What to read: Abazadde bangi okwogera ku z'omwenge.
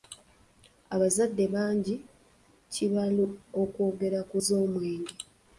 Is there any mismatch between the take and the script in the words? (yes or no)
no